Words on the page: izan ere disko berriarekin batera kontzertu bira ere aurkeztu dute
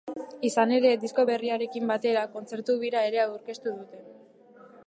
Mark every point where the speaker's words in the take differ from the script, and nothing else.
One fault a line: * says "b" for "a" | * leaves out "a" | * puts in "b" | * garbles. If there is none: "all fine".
all fine